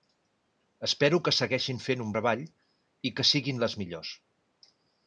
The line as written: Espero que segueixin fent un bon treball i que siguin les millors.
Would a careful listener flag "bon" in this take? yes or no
yes